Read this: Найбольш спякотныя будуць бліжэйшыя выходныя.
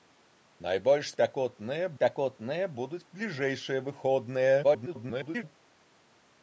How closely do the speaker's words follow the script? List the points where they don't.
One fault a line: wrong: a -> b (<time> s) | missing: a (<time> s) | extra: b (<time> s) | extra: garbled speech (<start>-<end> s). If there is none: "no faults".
extra: спякотныя (1.9 s)
extra: garbled speech (4.6-5.4 s)